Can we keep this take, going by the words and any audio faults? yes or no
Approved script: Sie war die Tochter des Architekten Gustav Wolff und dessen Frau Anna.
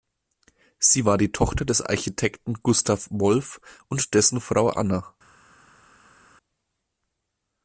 yes